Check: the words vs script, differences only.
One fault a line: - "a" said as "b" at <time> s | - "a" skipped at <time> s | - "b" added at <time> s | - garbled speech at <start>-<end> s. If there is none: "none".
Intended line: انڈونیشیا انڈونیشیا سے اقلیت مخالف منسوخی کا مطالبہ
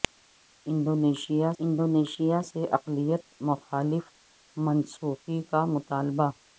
none